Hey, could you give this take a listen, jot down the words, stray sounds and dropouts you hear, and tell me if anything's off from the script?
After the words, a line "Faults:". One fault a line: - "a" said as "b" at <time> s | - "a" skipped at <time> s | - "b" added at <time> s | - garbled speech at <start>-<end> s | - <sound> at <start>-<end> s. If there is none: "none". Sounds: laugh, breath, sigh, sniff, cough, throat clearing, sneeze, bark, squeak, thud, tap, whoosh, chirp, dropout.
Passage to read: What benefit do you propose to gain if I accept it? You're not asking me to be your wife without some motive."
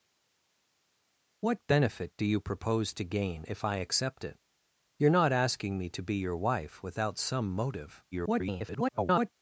What benefit do you propose to gain if I accept it? You're not asking me to be your wife without some motive." [garbled]
Faults:
- garbled speech at 8.1-9.3 s